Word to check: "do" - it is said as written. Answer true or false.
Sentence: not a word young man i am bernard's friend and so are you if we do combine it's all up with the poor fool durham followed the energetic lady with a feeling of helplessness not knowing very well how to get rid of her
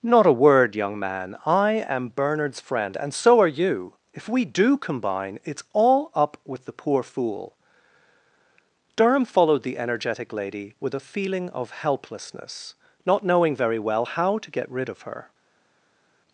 true